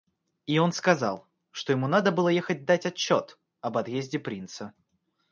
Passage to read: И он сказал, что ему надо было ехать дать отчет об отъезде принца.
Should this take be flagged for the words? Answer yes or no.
no